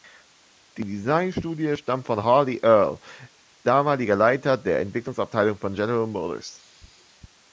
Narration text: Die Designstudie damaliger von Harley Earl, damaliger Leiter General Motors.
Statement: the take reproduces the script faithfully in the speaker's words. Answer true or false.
false